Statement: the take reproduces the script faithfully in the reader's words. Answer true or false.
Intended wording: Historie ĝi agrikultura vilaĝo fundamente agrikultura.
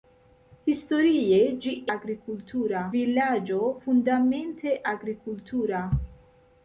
true